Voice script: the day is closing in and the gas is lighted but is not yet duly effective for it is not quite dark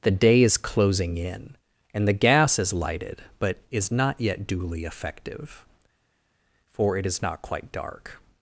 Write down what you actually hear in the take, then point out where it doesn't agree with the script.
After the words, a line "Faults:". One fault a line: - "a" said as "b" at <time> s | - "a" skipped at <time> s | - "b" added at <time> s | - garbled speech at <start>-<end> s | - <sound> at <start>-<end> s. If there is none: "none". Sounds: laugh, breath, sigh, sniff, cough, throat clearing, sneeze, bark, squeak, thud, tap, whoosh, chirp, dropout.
the day is closing in and the gas is lighted but is not yet duly effective for it is not quite dark
Faults:
none